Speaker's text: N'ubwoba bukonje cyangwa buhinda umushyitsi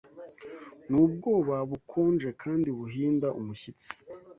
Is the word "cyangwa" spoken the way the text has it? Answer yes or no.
no